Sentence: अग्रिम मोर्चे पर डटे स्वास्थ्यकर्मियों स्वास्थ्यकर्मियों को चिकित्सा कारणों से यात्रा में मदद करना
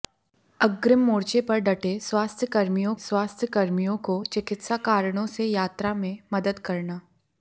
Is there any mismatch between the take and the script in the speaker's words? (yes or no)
no